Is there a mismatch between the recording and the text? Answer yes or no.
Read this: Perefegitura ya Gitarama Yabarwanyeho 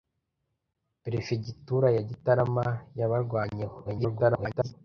yes